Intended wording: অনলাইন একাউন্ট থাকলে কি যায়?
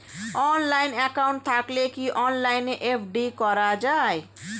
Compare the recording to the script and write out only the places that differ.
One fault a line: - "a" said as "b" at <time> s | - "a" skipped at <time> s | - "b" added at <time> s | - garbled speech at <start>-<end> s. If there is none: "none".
- "অনলাইনে এফ.ডি করা" added at 2.2 s